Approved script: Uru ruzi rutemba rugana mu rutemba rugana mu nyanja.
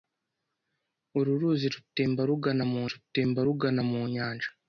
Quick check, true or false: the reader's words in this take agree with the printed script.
true